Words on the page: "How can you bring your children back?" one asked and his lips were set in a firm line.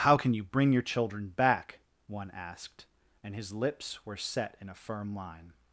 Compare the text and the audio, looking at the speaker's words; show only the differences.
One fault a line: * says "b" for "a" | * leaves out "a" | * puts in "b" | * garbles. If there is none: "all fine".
all fine